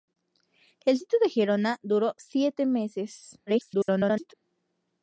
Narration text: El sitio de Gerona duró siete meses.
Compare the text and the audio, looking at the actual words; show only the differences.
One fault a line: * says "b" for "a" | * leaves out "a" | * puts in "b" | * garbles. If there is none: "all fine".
* garbles